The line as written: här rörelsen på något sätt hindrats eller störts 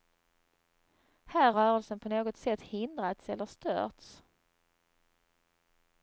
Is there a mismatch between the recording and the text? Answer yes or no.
no